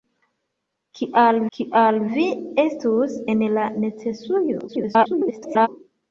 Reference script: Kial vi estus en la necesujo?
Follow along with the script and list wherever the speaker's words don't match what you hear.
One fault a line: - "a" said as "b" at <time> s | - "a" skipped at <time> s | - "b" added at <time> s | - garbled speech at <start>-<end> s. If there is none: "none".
- "kial" added at 1.6 s
- garbled speech at 4.7-5.7 s